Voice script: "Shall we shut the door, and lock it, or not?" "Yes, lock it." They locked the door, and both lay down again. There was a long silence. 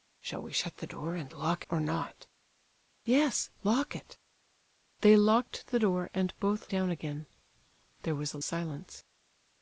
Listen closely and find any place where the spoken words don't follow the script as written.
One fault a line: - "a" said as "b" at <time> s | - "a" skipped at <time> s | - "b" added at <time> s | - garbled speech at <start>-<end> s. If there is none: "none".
- "it" skipped at 1.7 s
- "lay" skipped at 6.7 s
- "long" skipped at 8.4 s